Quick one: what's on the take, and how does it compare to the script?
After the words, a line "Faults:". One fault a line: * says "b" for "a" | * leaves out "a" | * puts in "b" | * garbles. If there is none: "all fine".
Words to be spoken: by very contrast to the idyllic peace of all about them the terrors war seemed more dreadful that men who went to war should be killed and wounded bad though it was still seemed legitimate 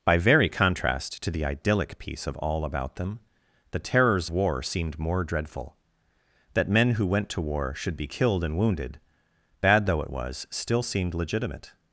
by very contrast to the idyllic peace of all about them the terrors war seemed more dreadful that men who went to war should be killed and wounded bad though it was still seemed legitimate
Faults:
all fine